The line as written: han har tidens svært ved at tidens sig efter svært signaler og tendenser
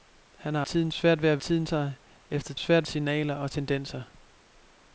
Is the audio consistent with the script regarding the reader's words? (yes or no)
yes